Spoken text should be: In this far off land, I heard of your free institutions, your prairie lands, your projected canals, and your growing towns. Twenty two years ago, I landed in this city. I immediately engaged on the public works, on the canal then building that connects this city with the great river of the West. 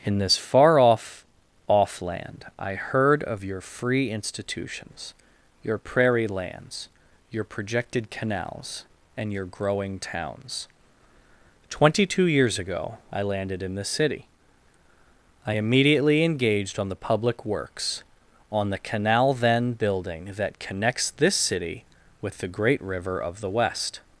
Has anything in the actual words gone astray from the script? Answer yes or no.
yes